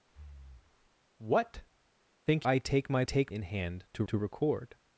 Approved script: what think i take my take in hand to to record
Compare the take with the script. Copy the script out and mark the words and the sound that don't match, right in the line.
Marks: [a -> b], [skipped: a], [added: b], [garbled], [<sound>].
[breath] what think i take my take in hand to to record